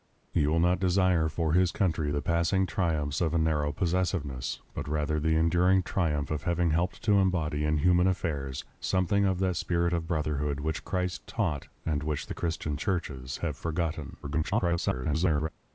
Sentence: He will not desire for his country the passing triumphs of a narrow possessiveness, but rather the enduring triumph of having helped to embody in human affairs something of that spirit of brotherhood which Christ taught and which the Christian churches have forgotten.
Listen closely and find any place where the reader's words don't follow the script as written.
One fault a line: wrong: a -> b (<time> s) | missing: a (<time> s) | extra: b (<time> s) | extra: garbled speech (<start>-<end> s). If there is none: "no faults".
extra: garbled speech (14.2-15.5 s)